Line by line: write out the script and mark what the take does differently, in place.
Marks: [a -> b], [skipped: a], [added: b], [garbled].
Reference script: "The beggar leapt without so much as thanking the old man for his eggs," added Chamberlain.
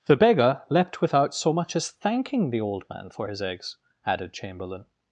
"The beggar leapt without so much as thanking the old man for his eggs," added Chamberlain.